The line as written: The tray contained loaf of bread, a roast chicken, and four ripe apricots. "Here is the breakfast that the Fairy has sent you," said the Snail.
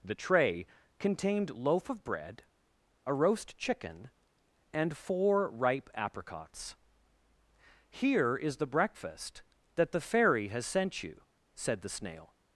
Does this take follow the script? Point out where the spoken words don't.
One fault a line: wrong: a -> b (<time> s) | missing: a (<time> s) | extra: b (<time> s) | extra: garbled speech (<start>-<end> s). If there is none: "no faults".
no faults